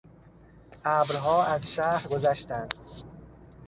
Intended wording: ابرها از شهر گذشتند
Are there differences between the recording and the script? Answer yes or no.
no